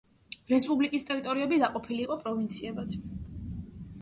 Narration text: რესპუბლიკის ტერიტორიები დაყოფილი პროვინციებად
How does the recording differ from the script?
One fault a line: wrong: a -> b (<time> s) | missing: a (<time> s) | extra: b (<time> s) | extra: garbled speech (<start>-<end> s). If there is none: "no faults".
extra: იყო (2.0 s)